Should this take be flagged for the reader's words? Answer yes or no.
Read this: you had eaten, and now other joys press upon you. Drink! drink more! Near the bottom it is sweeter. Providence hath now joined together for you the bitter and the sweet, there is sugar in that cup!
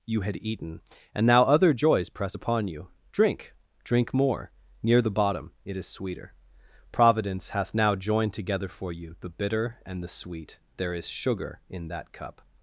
no